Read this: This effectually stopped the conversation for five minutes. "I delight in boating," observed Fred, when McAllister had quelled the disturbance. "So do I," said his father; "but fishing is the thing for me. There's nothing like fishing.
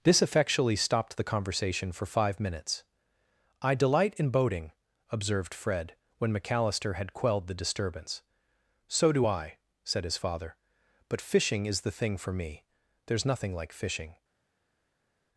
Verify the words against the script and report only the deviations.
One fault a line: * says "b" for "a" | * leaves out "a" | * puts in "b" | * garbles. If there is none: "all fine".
all fine